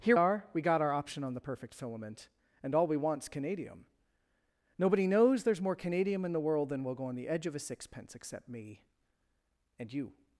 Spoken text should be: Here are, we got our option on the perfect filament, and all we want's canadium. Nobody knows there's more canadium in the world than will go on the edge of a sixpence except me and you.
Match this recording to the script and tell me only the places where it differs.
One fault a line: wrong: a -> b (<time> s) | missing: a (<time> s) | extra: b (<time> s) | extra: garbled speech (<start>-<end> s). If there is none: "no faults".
no faults